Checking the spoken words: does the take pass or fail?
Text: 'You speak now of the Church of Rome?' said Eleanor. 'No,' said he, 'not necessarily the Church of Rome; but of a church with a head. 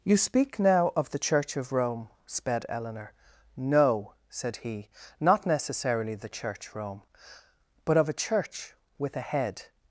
fail